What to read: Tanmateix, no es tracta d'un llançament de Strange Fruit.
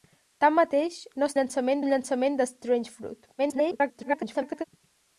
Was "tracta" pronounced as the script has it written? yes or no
no